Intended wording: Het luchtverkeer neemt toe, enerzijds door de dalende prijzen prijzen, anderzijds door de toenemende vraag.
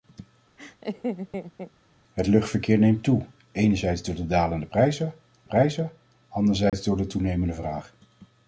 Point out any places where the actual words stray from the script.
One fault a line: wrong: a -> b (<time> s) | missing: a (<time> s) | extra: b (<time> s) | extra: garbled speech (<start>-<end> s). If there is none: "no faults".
no faults